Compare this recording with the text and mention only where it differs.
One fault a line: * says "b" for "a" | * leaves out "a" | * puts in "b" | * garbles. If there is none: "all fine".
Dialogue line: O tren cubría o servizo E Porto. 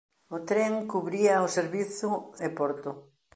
all fine